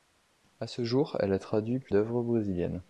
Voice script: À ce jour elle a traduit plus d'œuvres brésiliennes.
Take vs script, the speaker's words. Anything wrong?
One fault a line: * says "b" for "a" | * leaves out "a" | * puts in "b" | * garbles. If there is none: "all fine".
all fine